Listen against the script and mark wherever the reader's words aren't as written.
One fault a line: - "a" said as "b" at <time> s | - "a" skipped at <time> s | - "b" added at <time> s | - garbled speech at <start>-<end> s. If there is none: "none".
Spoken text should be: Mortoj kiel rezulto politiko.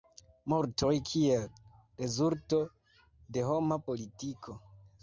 - "de homa" added at 3.4 s